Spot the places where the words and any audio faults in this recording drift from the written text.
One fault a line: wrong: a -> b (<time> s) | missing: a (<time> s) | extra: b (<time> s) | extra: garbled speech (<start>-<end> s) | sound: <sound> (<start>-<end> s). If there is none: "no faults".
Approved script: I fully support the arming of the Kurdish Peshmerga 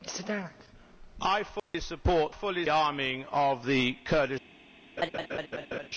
sound: dropout (1.6-1.7 s)
wrong: the -> fully (2.3 s)
sound: laugh (5.0-5.9 s)